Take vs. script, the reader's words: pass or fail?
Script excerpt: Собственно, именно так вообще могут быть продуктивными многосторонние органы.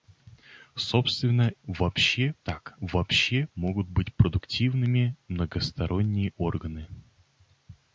fail